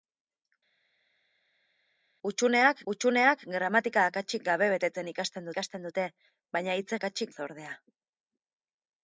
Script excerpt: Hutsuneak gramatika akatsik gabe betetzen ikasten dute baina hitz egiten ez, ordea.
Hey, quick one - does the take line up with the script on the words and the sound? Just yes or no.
no